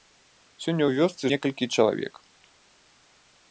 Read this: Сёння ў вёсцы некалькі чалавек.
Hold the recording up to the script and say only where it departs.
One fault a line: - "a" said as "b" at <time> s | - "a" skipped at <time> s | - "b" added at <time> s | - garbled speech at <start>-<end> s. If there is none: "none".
none